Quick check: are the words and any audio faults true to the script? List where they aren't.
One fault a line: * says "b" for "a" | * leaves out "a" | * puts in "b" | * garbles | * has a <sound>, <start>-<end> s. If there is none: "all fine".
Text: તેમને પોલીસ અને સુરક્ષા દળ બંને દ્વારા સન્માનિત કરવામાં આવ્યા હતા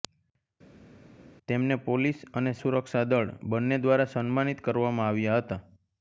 all fine